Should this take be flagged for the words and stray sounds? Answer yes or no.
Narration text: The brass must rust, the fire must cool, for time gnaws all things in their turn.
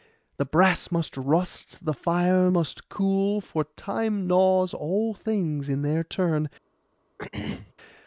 yes